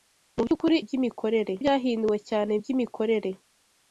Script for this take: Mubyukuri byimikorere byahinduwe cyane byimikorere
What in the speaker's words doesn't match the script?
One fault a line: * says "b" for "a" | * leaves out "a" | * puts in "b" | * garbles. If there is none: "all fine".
all fine